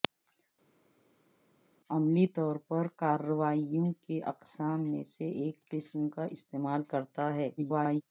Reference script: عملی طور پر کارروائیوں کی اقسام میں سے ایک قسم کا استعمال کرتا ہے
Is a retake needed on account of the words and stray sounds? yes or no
yes